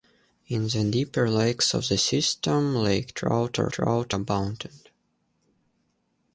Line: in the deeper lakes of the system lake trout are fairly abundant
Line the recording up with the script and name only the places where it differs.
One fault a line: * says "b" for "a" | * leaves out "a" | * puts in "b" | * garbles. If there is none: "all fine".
* says "trout" for "fairly"